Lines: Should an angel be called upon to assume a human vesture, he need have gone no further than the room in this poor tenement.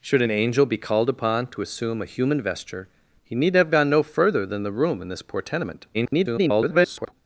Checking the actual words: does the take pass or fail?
fail